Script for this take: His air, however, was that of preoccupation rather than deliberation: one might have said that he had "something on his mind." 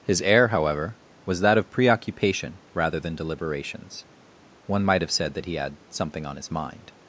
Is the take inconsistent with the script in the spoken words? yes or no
yes